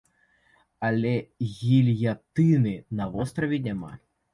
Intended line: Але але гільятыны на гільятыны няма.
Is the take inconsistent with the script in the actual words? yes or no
yes